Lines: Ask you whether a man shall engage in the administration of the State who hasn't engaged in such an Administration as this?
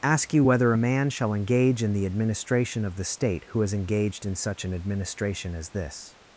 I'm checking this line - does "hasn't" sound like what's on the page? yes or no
no